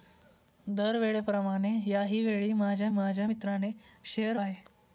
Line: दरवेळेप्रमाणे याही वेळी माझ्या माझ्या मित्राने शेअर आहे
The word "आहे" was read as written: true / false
true